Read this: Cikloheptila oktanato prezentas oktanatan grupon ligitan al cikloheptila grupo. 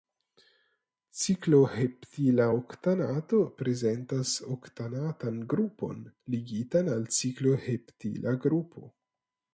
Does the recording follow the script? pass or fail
pass